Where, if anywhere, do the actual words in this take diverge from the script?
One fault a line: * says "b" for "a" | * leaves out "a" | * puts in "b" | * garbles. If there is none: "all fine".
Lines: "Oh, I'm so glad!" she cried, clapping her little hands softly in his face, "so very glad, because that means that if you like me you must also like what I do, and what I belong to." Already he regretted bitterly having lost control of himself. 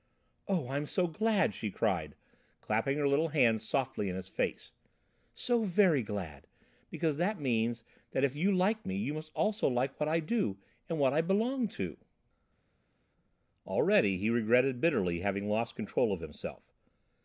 all fine